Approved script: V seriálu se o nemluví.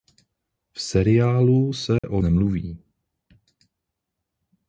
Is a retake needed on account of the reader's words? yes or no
no